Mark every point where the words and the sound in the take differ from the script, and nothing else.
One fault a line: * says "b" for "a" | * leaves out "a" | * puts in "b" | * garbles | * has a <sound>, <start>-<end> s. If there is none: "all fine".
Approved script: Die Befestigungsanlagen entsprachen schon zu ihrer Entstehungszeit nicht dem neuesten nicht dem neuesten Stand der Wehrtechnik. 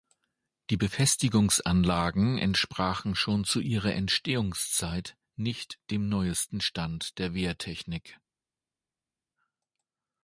* leaves out "nicht dem neuesten"